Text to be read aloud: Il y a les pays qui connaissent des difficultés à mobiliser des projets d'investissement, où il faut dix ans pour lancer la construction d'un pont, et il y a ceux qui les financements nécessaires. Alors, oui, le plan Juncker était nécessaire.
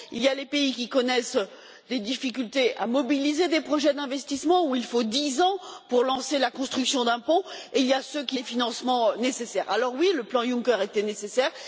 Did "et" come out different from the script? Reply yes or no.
no